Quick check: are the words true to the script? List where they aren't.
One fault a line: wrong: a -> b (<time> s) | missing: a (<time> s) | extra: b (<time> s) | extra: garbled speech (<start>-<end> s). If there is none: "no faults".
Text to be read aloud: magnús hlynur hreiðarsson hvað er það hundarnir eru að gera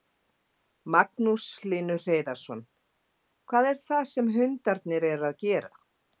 extra: sem (4.2 s)